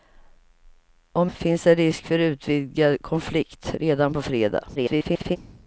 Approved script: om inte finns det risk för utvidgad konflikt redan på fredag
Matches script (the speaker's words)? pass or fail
fail